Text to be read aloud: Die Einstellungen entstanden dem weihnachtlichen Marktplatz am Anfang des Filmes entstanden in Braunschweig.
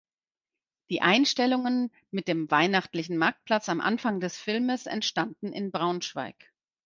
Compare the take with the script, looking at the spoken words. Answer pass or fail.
fail